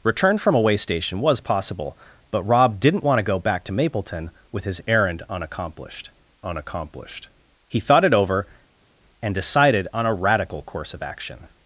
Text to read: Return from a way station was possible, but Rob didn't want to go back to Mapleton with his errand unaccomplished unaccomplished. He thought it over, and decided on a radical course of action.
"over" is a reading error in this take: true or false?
false